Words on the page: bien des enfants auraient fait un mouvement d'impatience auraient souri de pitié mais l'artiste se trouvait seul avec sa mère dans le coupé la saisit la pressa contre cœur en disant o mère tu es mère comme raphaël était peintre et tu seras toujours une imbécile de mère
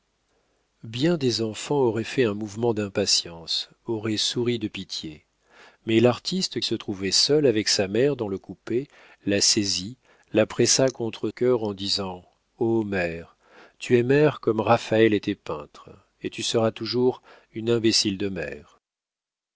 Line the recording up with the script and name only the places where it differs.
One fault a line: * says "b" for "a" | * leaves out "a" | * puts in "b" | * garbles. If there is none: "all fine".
all fine